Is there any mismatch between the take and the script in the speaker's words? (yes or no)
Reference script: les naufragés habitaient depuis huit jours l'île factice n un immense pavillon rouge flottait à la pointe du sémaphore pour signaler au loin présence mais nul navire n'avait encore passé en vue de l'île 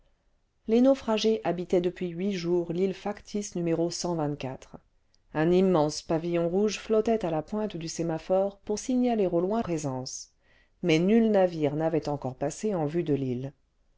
no